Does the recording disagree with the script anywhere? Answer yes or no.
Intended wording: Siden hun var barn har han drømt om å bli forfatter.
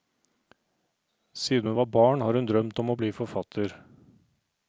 yes